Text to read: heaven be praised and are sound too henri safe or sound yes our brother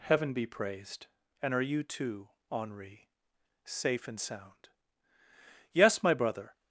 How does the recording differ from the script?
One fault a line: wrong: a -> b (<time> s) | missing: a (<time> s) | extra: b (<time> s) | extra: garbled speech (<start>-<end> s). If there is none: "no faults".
wrong: sound -> you (1.6 s)
wrong: or -> and (4.1 s)
wrong: our -> my (6.0 s)